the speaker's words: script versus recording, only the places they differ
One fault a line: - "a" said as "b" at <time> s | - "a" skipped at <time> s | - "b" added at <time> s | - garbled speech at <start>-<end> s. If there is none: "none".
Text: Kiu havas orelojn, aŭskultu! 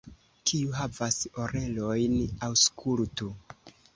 none